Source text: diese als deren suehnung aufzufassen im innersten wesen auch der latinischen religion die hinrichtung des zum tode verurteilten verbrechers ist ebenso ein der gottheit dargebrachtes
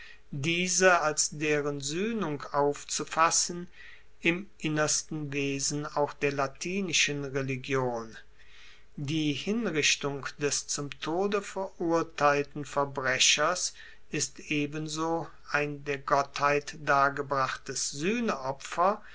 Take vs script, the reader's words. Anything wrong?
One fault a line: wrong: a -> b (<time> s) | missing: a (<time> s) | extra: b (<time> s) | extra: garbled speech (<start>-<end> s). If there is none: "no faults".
no faults